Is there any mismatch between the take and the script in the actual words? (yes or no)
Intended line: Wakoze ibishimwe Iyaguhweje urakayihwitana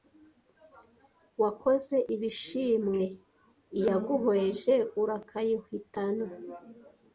no